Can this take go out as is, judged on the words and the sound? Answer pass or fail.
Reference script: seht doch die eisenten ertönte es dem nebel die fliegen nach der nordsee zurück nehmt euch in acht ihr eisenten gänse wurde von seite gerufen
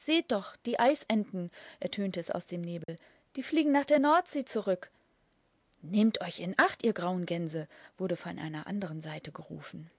fail